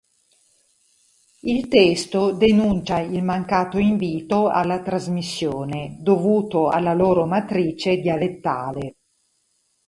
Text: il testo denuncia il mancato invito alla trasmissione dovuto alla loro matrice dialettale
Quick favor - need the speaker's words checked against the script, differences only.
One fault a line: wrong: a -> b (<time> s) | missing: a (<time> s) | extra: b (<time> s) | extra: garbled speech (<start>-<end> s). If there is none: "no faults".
no faults